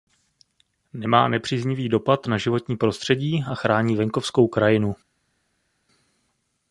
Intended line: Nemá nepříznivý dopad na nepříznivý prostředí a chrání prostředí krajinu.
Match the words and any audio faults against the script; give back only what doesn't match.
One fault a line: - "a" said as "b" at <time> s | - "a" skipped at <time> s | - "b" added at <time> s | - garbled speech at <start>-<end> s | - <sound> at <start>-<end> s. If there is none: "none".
- "nepříznivý" said as "životní" at 2.4 s
- "prostředí" said as "venkovskou" at 4.0 s